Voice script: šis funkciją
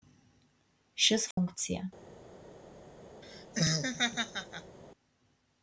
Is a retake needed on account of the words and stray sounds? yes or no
yes